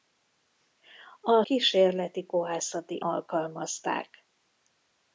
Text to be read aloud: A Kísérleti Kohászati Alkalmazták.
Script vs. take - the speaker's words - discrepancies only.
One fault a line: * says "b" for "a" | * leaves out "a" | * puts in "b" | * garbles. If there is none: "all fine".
all fine